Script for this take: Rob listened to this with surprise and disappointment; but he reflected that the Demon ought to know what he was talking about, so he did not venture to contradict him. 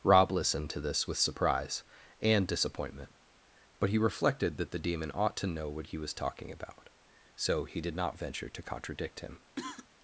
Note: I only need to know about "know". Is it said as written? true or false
true